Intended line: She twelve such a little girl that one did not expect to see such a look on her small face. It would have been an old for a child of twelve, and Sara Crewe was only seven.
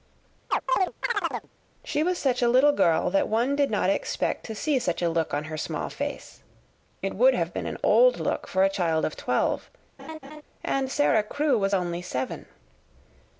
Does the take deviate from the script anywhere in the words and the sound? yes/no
yes